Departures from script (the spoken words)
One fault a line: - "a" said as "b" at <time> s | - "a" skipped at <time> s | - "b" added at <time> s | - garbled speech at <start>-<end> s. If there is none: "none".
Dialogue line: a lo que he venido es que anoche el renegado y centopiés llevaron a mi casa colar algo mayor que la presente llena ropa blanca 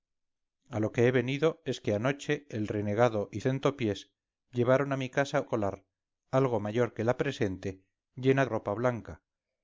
none